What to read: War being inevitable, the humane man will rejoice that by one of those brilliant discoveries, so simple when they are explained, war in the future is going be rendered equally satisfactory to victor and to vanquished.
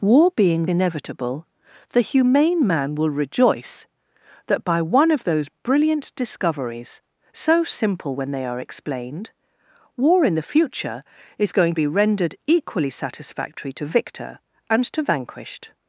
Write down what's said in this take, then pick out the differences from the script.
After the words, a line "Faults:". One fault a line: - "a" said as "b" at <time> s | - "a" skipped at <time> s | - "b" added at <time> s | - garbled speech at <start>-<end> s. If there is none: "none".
War being inevitable, the humane man will rejoice that by one of those brilliant discoveries, so simple when they are explained, war in the future is going be rendered equally satisfactory to victor and to vanquished.
Faults:
none